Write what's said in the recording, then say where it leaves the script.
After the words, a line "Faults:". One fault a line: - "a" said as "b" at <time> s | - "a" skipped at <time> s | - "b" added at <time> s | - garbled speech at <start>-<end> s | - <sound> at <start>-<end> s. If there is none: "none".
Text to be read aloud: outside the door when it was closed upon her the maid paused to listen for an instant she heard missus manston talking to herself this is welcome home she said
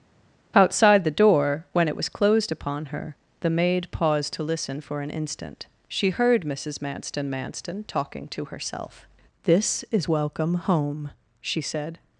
outside the door when it was closed upon her the maid paused to listen for an instant she heard missus manston manston talking to herself this is welcome home she said
Faults:
- "manston" added at 7.3 s